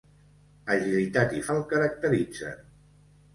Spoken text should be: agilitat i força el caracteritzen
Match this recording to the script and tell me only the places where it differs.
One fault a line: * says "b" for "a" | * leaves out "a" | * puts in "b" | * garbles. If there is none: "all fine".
* leaves out "força"